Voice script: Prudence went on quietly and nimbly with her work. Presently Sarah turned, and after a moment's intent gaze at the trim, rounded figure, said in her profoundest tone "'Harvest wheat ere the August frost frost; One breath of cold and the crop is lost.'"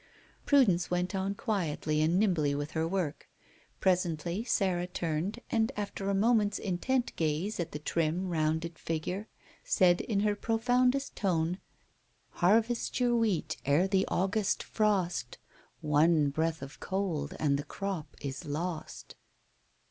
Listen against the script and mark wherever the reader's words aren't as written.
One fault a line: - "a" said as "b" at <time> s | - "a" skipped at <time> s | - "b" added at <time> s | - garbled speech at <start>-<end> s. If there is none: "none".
- "your" added at 13.0 s
- "frost" skipped at 15.4 s